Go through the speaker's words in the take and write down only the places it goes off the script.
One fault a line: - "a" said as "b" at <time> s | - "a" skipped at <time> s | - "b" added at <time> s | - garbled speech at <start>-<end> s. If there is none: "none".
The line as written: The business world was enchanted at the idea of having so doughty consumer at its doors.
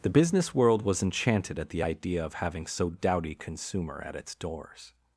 none